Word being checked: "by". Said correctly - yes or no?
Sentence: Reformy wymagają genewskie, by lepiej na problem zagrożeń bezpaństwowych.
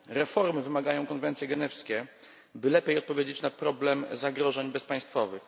yes